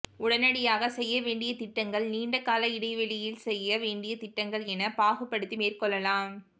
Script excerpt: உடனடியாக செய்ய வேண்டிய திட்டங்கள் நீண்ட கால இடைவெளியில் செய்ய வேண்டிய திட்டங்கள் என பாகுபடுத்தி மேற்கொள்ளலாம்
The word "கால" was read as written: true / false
true